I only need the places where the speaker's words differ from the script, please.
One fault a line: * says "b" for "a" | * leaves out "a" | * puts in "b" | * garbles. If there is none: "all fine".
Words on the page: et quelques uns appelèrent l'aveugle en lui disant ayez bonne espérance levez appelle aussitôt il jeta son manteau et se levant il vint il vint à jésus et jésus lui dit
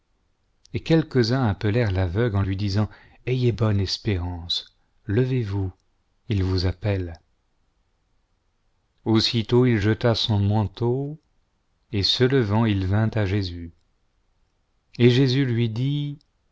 * puts in "vous il vous"
* leaves out "il vint"